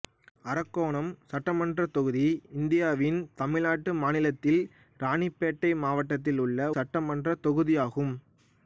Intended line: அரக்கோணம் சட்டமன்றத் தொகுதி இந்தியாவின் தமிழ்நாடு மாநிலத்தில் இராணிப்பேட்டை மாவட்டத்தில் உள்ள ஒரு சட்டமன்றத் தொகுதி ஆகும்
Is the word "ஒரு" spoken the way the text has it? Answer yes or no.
no